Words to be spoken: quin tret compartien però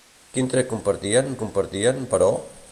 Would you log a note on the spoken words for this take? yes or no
yes